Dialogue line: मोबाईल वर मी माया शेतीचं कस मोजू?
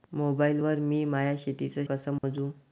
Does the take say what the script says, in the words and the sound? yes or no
no